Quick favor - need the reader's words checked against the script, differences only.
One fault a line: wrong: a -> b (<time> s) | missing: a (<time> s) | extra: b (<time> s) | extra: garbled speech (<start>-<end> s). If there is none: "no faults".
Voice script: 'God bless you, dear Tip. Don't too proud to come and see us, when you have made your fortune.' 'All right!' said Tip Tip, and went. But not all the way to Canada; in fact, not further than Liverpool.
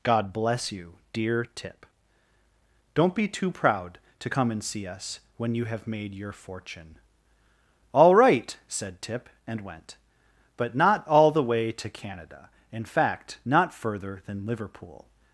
extra: be (3.1 s)
missing: Tip (9.3 s)